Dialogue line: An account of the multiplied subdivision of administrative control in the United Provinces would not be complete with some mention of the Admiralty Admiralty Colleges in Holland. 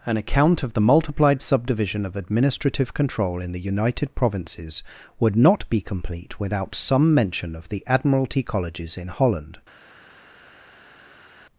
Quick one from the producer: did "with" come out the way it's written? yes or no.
no